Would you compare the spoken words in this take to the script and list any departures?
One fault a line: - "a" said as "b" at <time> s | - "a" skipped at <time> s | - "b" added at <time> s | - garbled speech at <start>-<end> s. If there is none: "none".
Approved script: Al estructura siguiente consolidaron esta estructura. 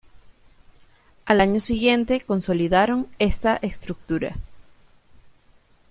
- "estructura" said as "año" at 1.4 s